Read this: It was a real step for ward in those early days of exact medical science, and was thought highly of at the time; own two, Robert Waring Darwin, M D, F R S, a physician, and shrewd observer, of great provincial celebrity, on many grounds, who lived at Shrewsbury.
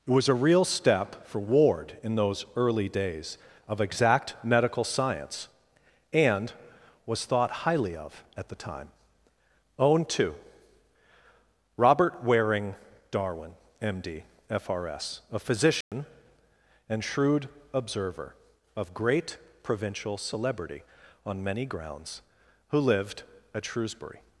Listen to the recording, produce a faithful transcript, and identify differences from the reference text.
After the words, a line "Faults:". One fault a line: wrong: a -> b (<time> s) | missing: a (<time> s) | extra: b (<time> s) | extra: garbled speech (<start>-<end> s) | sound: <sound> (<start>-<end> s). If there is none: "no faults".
It was a real step for ward in those early days of exact medical science, and was thought highly of at the time; own two, Robert Waring Darwin, M D, F R S, a physician, and shrewd observer, of great provincial celebrity, on many grounds, who lived at Shrewsbury.
Faults:
sound: dropout (15.8-15.9 s)